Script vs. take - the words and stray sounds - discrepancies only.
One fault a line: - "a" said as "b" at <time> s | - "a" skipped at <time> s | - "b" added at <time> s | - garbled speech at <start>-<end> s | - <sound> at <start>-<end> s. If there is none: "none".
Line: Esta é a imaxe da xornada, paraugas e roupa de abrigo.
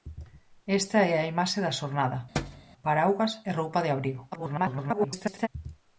- thud at 2.4-2.7 s
- garbled speech at 4.3-5.5 s